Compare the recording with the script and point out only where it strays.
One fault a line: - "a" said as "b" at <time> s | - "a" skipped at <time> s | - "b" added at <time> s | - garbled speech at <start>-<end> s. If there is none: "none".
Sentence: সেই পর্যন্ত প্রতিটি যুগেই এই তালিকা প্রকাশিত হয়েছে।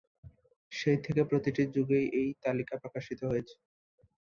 - "পর্যন্ত" said as "থেকে" at 1.1 s